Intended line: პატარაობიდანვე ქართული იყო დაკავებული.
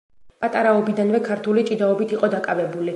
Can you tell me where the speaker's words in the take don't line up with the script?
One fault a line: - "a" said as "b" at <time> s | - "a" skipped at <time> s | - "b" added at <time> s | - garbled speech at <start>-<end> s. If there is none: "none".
- "ჭიდაობით" added at 1.7 s